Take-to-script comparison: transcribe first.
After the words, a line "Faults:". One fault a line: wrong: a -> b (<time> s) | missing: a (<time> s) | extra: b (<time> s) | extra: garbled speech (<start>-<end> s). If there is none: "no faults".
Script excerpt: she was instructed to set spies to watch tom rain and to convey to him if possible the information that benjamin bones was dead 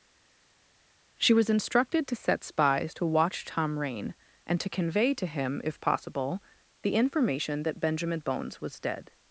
she was instructed to set spies to watch tom rain and to convey to him if possible the information that benjamin bones was dead
Faults:
no faults